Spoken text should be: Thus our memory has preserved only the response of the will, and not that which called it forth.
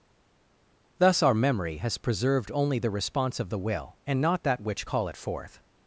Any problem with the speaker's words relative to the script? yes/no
yes